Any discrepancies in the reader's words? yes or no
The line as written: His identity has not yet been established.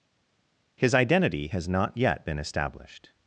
no